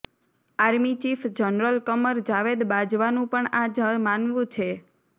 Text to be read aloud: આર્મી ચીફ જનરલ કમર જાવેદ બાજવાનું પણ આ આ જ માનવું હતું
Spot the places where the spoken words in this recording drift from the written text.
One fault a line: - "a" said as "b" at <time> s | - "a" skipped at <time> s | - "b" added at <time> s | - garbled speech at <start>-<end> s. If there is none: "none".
- "આ" skipped at 3.7 s
- "હતું" said as "છે" at 4.5 s